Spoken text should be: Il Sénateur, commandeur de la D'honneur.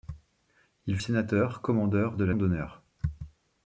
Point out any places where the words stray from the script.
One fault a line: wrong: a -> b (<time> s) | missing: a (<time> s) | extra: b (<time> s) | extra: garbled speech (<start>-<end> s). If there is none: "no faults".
no faults